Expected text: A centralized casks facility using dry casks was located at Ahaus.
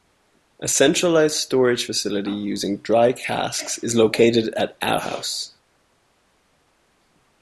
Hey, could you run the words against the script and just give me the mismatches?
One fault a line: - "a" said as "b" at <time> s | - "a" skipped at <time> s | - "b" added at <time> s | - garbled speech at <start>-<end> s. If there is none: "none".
- "casks" said as "storage" at 1.4 s
- "was" said as "is" at 3.8 s